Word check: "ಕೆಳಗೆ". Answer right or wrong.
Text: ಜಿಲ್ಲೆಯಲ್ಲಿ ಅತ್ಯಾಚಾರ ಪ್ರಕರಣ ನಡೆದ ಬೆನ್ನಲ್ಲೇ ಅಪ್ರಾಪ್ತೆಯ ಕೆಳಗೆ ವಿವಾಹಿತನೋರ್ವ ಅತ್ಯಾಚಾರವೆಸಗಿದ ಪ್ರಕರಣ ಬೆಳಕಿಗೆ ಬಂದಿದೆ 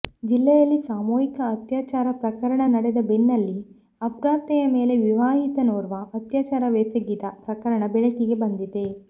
wrong